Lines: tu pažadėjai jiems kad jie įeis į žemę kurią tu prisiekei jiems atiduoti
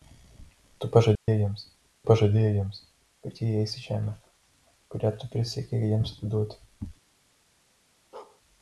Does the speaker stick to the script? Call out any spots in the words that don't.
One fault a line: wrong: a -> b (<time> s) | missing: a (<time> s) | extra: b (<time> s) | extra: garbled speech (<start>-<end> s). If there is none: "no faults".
extra: pažadėjai jiems (2.1 s)